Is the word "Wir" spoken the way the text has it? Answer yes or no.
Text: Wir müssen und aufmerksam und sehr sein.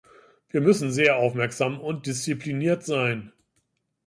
yes